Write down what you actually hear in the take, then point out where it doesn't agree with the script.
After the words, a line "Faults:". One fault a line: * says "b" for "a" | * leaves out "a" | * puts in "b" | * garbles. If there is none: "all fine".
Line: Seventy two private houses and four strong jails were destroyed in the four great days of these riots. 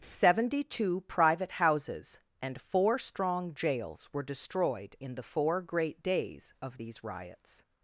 Seventy two private houses and four strong jails were destroyed in the four great days of these riots.
Faults:
all fine